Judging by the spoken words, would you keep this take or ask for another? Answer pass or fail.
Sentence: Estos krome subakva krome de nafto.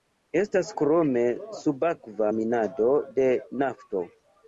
fail